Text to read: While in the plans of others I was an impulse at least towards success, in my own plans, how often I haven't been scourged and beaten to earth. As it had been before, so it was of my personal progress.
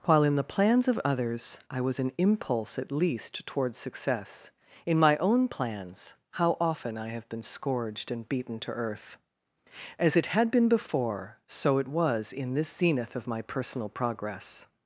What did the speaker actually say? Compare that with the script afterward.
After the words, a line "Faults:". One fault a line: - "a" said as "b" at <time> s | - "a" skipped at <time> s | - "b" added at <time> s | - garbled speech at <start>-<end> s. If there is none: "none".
While in the plans of others I was an impulse at least towards success, in my own plans, how often I have been scourged and beaten to earth. As it had been before, so it was in this zenith of my personal progress.
Faults:
- "haven't" said as "have" at 7.1 s
- "in this zenith" added at 12.3 s